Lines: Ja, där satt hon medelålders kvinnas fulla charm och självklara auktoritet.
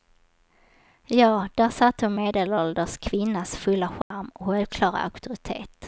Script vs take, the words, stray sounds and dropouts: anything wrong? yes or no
yes